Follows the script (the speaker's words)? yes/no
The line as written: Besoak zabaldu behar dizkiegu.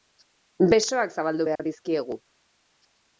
yes